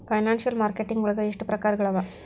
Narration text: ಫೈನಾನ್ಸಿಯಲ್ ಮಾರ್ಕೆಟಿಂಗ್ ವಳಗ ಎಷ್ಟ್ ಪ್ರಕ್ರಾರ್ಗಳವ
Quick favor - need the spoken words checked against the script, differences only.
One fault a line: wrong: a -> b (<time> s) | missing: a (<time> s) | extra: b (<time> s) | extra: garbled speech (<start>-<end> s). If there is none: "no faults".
no faults